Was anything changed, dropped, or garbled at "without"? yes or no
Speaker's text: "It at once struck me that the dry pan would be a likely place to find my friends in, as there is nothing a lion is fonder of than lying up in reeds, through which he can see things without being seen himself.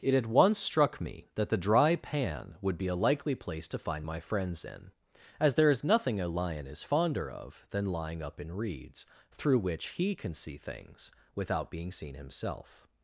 no